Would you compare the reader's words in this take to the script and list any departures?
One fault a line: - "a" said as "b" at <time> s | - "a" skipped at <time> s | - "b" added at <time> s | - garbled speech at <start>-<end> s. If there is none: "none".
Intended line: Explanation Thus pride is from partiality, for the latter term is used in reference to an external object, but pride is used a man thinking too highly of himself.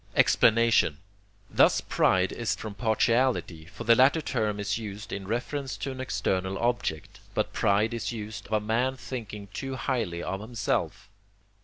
none